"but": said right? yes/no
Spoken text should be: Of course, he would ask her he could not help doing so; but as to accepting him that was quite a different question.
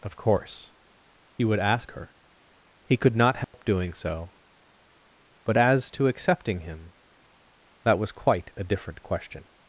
yes